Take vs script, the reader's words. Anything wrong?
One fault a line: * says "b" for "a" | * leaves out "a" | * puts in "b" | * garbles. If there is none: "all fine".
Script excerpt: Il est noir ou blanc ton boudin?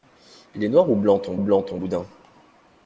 * puts in "blanc ton"